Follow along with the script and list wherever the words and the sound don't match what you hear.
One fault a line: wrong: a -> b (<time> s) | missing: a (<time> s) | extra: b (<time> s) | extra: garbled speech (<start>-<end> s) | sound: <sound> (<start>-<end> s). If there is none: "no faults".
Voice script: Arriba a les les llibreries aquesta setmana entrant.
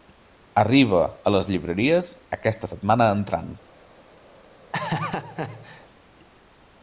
missing: les (1.5 s)
sound: laugh (4.7-5.9 s)